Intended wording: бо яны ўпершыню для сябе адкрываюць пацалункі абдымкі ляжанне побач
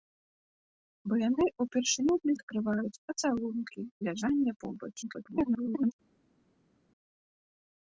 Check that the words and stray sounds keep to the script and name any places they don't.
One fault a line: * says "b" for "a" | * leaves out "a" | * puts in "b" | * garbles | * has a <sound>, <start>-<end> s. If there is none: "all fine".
* leaves out "сябе"
* leaves out "абдымкі"
* garbles